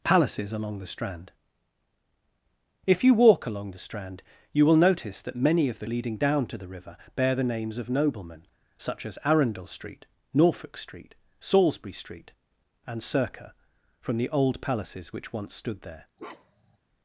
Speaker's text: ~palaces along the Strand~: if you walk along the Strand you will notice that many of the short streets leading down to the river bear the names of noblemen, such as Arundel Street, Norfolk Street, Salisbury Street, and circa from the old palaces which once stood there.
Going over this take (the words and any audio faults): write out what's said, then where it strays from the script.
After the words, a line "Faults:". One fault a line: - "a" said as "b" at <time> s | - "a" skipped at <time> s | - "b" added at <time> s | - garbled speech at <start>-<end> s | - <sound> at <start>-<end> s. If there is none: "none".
~palaces along the Strand~: if you walk along the Strand you will notice that many of the leading down to the river bear the names of noblemen, such as Arundel Street, Norfolk Street, Salisbury Street, and circa from the old palaces which once stood there.
Faults:
- "short streets" skipped at 5.8 s
- bark at 16.2-16.8 s